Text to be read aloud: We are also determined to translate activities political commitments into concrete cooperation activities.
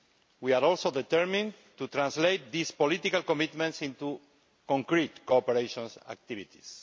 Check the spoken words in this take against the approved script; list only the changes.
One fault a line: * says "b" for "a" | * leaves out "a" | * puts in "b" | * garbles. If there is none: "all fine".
* says "these" for "activities"